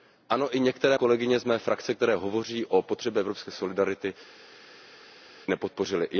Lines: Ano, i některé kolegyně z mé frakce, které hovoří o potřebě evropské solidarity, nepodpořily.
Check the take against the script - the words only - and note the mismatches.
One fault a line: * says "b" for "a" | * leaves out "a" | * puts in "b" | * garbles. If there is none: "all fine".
all fine